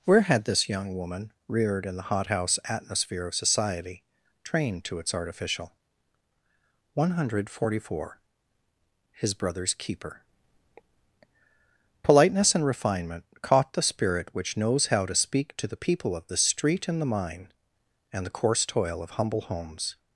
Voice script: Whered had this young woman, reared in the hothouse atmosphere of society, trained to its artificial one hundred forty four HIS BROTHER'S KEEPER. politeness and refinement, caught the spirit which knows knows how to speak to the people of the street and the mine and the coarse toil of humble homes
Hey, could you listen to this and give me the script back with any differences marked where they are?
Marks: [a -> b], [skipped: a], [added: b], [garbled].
[Whered -> Where] had this young woman, reared in the hothouse atmosphere of society, trained to its artificial one hundred forty four HIS BROTHER'S KEEPER. politeness and refinement, caught the spirit which knows [skipped: knows] how to speak to the people of the street and the mine and the coarse toil of humble homes